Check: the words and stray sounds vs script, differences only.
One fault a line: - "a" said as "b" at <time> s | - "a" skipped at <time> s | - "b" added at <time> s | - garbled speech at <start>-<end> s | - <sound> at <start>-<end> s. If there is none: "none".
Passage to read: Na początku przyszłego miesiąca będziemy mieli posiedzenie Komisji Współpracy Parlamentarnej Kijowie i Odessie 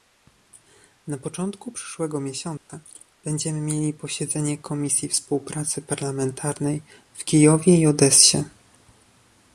- dropout at 2.6-2.7 s
- "w" added at 7.1 s